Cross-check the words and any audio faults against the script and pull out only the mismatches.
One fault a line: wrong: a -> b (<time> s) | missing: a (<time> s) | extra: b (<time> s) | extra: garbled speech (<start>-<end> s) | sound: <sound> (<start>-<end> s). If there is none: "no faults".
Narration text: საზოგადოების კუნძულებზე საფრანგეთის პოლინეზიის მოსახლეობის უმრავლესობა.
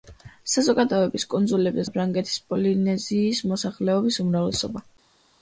no faults